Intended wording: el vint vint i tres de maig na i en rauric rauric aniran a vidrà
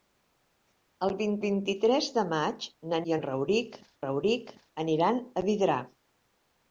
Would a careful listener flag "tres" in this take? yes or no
no